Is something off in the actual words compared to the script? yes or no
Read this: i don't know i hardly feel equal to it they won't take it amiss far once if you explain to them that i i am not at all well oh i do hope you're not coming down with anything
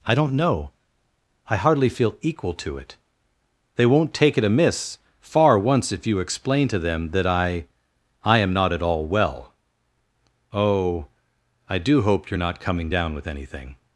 no